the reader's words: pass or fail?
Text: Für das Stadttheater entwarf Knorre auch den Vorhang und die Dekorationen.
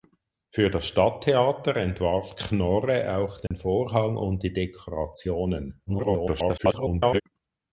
fail